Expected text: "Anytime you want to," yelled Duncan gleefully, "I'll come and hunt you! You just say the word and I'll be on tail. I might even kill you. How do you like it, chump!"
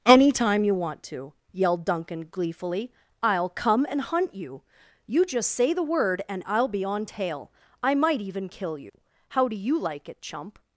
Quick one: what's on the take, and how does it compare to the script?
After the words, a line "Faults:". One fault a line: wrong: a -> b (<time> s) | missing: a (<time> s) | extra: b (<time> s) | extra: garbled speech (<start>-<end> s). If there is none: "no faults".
"Anytime you want to," yelled Duncan gleefully, "I'll come and hunt you! You just say the word and I'll be on tail. I might even kill you. How do you like it, chump!"
Faults:
no faults